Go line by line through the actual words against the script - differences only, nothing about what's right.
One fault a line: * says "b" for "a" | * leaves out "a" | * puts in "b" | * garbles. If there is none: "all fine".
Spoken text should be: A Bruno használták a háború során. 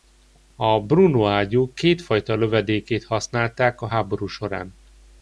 * puts in "ágyú kétfajta lövedékét"